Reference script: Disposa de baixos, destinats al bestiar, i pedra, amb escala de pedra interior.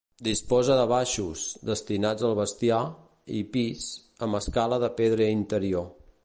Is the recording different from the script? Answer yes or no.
yes